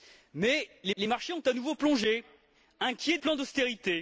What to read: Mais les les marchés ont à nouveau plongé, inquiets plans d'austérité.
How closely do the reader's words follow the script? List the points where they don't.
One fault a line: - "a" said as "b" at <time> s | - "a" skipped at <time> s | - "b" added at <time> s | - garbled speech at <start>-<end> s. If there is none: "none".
none